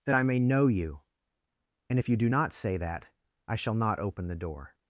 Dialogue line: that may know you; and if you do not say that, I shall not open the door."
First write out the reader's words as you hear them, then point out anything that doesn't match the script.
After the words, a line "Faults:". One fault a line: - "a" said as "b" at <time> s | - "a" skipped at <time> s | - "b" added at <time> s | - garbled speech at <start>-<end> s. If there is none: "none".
that I may know you; and if you do not say that, I shall not open the door."
Faults:
- "I" added at 0.1 s